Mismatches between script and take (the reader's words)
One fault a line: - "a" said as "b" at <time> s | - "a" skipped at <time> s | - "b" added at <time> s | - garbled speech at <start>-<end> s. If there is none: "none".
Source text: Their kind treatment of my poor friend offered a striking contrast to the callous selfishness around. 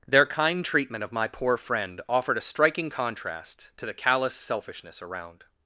none